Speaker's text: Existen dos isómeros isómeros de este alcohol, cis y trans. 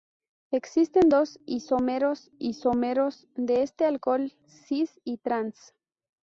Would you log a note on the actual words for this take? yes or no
no